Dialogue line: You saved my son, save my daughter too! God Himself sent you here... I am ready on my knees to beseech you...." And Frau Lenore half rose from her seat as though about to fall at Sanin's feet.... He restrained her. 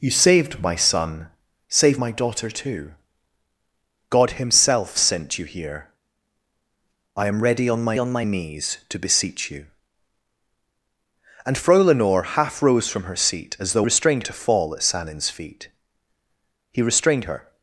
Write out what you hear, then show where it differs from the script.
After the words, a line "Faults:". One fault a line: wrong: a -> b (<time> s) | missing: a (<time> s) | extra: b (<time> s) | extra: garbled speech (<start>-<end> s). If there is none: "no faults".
You saved my son, save my daughter too! God Himself sent you here... I am ready on my on my knees to beseech you...." And Frau Lenore half rose from her seat as though restrained to fall at Sanin's feet.... He restrained her.
Faults:
extra: on my (8.0 s)
wrong: about -> restrained (13.8 s)